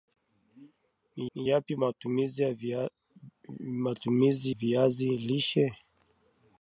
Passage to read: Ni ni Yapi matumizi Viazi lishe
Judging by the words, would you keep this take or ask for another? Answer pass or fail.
pass